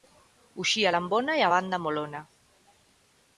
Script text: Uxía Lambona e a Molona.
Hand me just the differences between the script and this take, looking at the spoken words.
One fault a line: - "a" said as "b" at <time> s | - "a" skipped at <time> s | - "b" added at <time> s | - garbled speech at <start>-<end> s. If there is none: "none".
- "Banda" added at 1.5 s